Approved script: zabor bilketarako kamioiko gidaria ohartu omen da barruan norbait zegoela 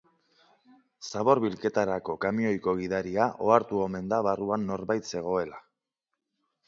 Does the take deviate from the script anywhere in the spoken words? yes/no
no